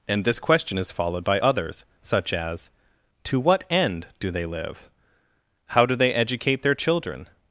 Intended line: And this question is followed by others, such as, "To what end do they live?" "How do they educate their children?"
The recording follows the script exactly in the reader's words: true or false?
true